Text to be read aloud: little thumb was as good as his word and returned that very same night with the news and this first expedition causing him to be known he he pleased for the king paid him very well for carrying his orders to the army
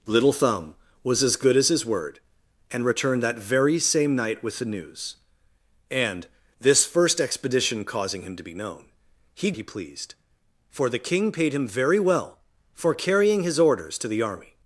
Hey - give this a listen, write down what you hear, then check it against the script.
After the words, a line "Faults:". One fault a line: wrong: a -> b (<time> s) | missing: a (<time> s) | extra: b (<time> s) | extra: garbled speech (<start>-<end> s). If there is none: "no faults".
little thumb was as good as his word and returned that very same night with the news and this first expedition causing him to be known he he pleased for the king paid him very well for carrying his orders to the army
Faults:
no faults